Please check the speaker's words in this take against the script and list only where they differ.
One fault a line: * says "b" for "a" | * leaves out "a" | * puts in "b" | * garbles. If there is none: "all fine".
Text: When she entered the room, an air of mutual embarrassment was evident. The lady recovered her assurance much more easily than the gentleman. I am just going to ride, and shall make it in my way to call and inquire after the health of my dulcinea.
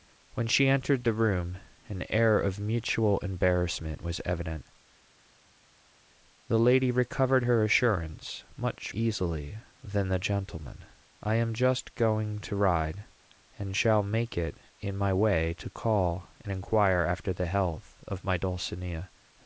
* leaves out "more"